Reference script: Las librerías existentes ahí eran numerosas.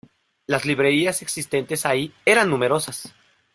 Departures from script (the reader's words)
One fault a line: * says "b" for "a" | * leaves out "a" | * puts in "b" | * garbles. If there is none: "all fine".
all fine